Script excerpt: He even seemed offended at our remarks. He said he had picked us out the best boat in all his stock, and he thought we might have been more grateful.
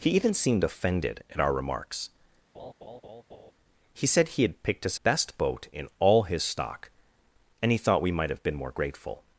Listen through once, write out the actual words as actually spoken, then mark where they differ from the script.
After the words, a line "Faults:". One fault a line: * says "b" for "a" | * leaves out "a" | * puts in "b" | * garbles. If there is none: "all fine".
He even seemed offended at our remarks. He said he had picked us best boat in all his stock, and he thought we might have been more grateful.
Faults:
* leaves out "out the"